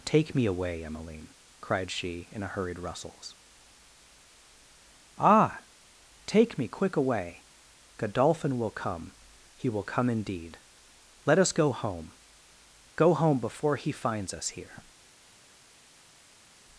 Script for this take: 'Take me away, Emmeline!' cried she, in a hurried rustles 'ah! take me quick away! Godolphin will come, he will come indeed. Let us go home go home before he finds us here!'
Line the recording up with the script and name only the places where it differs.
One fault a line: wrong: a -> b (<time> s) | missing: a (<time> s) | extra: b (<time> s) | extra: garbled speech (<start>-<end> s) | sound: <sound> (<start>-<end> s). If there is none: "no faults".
no faults